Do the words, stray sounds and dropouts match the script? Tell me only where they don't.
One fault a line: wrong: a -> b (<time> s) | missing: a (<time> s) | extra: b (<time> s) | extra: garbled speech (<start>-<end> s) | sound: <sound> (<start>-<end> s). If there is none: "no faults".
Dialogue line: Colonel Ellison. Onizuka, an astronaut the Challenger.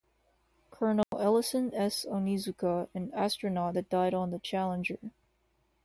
sound: dropout (1.0-1.1 s)
extra: S (1.8 s)
extra: that died on (3.7 s)